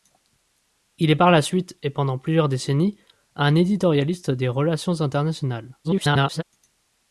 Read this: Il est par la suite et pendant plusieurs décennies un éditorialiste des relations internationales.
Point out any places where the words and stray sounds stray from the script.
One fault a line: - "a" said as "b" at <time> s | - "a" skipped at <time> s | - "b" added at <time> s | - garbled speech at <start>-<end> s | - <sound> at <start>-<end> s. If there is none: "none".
- garbled speech at 5.8-6.4 s